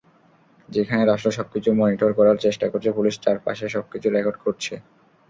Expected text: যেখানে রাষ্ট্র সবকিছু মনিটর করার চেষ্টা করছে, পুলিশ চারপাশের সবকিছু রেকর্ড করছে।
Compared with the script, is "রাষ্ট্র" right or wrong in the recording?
right